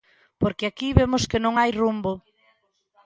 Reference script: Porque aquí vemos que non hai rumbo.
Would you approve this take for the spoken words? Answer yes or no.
yes